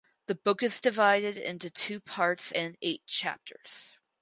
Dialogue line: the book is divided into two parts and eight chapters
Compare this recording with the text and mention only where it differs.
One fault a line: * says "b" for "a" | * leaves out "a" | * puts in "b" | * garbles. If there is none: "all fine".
all fine